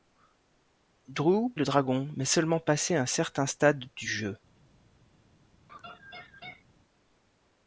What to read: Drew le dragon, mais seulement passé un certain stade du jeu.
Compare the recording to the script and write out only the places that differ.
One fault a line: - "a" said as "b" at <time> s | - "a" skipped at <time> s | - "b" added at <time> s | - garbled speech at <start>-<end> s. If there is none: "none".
none